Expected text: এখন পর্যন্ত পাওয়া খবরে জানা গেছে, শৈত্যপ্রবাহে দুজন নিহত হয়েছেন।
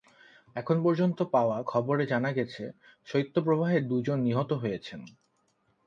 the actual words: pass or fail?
pass